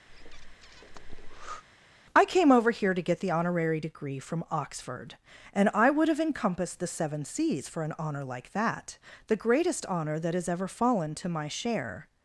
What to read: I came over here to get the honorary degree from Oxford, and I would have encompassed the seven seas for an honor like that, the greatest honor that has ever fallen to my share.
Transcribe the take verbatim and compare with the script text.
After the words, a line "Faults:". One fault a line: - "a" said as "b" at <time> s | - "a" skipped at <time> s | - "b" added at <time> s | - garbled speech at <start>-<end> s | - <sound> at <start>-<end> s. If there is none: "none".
I came over here to get the honorary degree from Oxford, and I would have encompassed the seven seas for an honor like that, the greatest honor that has ever fallen to my share.
Faults:
- breath at 0.1-1.6 s